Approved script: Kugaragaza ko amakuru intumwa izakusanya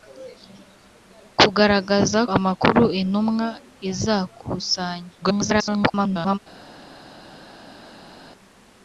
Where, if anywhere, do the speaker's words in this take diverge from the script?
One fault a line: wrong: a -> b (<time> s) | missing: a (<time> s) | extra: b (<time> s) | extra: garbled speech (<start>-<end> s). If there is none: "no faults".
missing: ko (2.2 s)
extra: garbled speech (5.2-6.4 s)